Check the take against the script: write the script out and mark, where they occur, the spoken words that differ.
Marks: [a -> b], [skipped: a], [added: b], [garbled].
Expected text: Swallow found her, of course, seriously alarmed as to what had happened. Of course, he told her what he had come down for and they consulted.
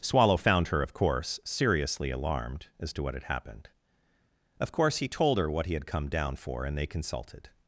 Swallow found her, of course, seriously alarmed as to what had happened. Of course, he told her what he had come down for and they consulted.